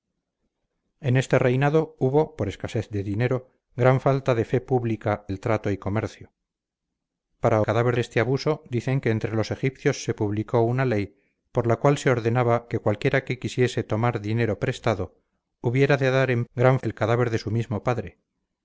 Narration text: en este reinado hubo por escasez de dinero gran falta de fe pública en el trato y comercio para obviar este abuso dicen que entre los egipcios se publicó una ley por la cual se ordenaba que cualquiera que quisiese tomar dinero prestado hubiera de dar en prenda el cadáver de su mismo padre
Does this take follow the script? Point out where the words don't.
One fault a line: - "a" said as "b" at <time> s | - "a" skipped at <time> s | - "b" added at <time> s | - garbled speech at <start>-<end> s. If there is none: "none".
- "en" skipped at 5.3 s
- "obviar" said as "cadáver" at 7.6 s
- "prenda" said as "gran" at 16.5 s